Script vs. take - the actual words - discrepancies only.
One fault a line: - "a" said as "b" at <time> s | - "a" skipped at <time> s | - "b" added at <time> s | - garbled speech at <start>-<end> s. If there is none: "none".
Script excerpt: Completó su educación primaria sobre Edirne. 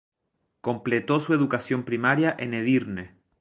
- "sobre" said as "en" at 2.4 s